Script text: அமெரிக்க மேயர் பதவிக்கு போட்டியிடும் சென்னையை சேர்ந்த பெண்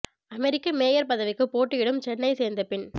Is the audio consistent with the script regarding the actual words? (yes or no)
yes